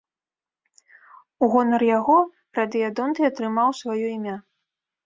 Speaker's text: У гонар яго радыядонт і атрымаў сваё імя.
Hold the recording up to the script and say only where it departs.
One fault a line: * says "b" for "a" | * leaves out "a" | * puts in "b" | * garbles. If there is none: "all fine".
all fine